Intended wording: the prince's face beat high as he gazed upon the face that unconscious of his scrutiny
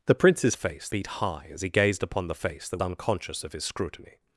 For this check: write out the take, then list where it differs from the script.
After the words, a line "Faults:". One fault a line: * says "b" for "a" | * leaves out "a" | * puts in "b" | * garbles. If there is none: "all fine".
the prince's face beat high as he gazed upon the face that unconscious of his scrutiny
Faults:
all fine